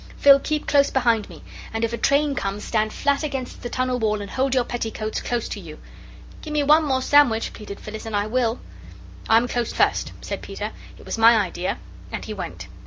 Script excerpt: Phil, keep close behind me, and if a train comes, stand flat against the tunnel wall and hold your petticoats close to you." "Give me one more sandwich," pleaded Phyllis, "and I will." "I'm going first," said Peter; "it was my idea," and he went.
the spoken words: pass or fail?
fail